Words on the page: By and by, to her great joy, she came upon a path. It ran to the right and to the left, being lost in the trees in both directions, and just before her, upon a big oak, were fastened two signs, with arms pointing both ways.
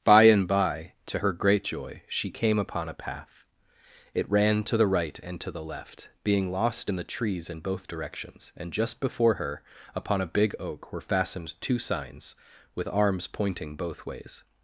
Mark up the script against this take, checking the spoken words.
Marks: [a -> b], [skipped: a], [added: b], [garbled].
By and by, to her great joy, she came upon a path. It ran to the right and to the left, being lost in the trees in both directions, and just before her, upon a big oak, were fastened two signs, with arms pointing both ways.